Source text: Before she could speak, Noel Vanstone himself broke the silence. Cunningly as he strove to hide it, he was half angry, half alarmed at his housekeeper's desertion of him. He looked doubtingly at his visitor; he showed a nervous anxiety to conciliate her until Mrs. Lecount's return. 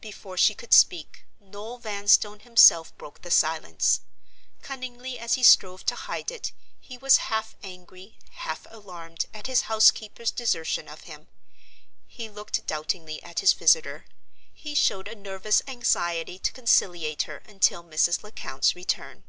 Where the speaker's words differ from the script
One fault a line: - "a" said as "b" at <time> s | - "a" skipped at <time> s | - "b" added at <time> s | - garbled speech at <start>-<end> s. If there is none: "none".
none